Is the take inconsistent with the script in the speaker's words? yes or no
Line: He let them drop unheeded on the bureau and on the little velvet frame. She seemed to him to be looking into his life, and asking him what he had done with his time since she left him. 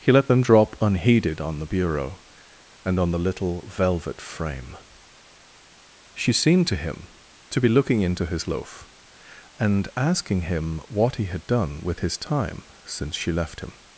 yes